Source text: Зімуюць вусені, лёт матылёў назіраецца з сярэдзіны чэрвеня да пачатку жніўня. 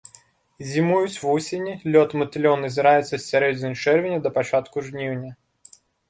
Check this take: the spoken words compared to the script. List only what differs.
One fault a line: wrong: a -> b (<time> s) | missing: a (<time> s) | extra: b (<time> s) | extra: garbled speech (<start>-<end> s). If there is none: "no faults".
no faults